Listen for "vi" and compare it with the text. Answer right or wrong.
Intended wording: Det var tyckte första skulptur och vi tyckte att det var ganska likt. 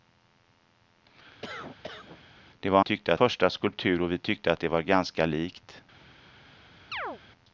right